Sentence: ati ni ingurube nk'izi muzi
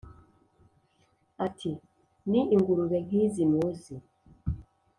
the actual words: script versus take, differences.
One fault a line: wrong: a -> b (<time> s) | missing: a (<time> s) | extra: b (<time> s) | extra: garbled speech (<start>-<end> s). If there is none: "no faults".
no faults